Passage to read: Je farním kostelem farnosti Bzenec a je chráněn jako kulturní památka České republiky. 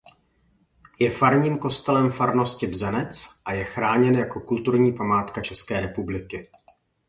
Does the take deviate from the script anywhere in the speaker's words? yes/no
no